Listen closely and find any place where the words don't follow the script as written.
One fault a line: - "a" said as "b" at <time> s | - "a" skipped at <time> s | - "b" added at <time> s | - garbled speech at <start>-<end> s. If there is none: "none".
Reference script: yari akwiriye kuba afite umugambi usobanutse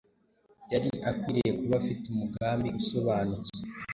none